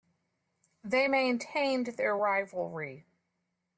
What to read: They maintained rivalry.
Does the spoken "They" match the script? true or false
true